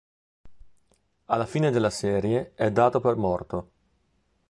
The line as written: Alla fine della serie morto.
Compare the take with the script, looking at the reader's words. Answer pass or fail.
fail